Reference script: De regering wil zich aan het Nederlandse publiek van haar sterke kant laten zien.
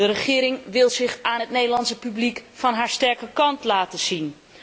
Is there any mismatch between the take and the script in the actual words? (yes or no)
no